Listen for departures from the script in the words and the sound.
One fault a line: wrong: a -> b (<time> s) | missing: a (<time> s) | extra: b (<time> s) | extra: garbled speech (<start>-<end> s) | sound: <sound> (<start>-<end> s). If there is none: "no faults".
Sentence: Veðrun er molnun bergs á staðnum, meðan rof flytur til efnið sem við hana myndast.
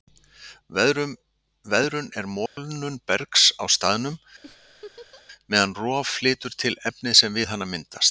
sound: dropout (2.5-2.6 s)
sound: laugh (4.4-5.2 s)